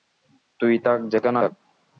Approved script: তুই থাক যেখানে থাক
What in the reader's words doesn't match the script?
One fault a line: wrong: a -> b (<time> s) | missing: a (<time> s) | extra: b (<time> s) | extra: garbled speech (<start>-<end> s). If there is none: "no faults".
no faults